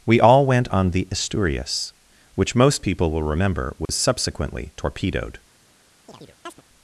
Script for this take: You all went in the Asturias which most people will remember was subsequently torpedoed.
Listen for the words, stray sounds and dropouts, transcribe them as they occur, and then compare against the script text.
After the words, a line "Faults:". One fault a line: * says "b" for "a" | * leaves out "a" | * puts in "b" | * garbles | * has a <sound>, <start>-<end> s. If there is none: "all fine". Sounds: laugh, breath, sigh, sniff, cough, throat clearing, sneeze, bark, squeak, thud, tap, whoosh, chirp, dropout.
We all went on the Asturias which most people will remember was subsequently torpedoed.
Faults:
* says "We" for "You"
* says "on" for "in"
* has a dropout, 3.9-3.9 s
* has a chirp, 6.1-6.6 s